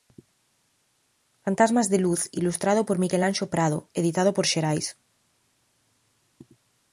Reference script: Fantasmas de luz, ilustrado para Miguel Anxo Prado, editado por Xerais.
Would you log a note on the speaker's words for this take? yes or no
yes